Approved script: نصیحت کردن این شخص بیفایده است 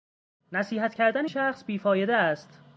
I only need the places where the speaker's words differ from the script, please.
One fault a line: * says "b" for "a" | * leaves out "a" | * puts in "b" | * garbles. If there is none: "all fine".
* leaves out "این"